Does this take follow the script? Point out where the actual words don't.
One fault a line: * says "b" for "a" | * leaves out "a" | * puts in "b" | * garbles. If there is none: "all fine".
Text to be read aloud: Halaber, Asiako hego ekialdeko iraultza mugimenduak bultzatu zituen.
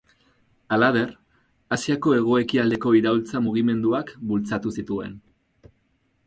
all fine